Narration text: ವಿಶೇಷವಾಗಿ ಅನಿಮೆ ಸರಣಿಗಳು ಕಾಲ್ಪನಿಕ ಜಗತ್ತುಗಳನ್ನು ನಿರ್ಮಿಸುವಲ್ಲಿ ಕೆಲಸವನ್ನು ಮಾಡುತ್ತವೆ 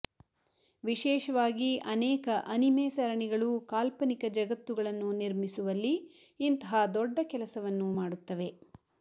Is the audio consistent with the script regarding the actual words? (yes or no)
no